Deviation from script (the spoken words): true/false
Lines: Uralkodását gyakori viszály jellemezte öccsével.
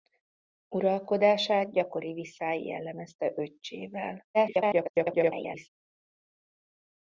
true